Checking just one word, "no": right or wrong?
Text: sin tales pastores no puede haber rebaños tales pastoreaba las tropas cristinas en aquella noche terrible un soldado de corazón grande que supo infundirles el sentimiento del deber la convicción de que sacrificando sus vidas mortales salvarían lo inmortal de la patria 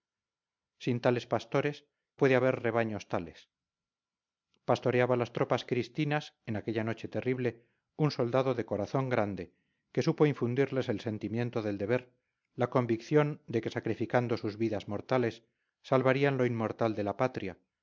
wrong